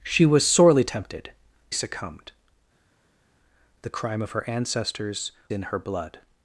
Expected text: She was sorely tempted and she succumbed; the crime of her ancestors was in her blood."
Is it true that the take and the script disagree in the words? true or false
true